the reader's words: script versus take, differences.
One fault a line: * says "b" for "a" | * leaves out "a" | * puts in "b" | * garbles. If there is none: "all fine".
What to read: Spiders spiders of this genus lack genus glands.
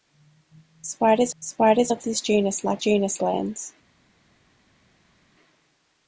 all fine